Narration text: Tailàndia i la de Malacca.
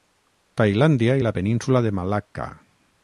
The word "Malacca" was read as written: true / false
true